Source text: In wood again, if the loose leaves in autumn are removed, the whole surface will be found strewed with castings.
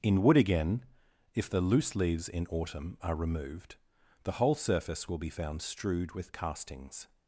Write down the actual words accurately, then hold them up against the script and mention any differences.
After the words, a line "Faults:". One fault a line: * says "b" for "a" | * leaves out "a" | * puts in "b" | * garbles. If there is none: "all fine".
In wood again, if the loose leaves in autumn are removed, the whole surface will be found strewed with castings.
Faults:
all fine